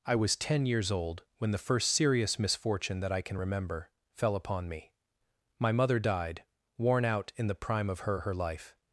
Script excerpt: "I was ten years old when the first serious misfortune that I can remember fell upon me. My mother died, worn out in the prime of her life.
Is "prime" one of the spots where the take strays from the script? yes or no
no